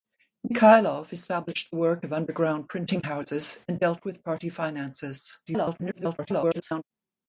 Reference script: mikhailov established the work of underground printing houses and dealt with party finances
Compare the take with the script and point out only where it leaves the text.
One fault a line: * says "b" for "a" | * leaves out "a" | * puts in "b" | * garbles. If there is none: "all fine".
* garbles